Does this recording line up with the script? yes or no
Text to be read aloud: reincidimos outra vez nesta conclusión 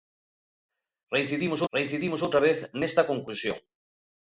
no